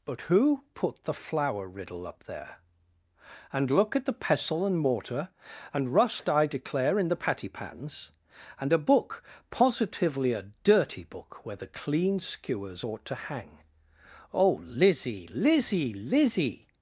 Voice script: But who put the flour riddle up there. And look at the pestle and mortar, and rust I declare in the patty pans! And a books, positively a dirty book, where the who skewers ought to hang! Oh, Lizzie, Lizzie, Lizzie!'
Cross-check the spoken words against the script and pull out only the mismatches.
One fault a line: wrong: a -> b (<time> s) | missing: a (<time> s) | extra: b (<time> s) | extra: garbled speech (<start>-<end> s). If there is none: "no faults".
wrong: books -> book (8.8 s)
wrong: who -> clean (11.7 s)